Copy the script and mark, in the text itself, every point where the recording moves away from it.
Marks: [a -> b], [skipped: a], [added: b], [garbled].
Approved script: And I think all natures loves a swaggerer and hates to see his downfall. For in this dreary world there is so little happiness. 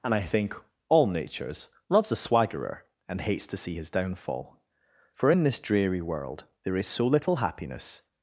And I think all natures loves a swaggerer and hates to see his downfall. For in this dreary world there is so little happiness.